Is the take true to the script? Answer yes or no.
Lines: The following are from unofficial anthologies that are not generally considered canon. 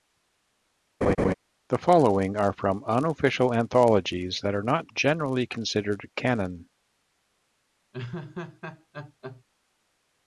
yes